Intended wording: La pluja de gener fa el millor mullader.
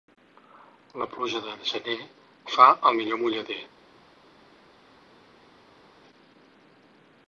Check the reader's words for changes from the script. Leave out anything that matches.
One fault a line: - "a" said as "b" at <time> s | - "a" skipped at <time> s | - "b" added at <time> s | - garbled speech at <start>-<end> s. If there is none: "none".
none